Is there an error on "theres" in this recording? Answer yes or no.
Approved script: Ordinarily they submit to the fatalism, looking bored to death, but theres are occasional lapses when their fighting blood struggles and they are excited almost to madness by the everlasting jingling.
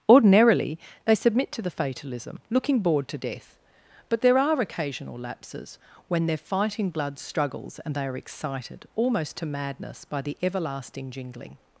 yes